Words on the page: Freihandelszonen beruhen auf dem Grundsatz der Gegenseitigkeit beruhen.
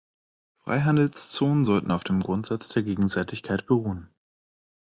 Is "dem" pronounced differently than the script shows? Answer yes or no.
no